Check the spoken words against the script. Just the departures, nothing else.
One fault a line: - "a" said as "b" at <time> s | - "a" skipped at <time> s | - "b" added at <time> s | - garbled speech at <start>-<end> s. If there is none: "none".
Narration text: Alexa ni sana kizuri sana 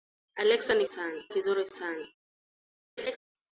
none